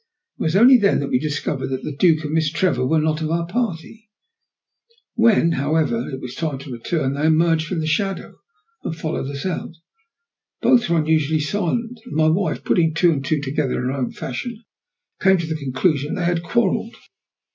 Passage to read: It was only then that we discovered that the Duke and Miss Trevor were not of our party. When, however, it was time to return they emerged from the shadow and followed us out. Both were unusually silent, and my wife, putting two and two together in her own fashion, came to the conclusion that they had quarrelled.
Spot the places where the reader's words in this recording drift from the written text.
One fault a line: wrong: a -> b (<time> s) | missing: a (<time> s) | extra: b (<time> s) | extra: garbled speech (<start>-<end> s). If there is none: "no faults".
no faults